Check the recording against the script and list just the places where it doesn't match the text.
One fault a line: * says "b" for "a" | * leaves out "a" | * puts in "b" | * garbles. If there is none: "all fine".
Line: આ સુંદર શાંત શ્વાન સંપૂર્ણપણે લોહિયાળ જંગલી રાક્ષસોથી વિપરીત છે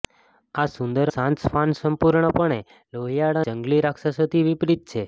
all fine